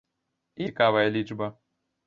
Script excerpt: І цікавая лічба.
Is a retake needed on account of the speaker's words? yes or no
no